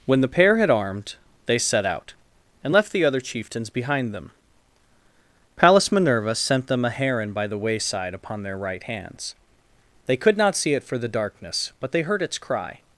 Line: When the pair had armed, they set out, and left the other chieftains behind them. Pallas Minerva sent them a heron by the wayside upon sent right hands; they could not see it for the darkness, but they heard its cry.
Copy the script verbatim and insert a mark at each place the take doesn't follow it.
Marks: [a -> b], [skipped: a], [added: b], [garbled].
When the pair had armed, they set out, and left the other chieftains behind them. Pallas Minerva sent them a heron by the wayside upon [sent -> their] right hands; they could not see it for the darkness, but they heard its cry.